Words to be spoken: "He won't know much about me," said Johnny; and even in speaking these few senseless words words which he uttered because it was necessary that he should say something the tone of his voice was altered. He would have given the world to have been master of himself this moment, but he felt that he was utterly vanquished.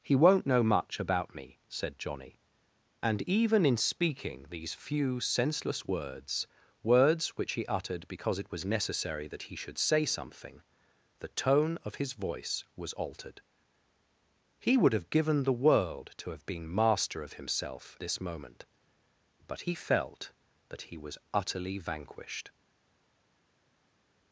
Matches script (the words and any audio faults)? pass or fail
pass